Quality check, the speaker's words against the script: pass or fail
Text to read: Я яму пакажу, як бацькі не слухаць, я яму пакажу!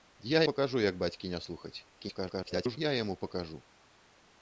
fail